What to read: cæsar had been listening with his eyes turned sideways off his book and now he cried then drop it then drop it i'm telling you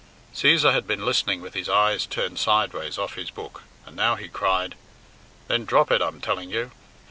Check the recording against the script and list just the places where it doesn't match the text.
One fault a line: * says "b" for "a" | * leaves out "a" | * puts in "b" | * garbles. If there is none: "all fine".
* leaves out "then drop it"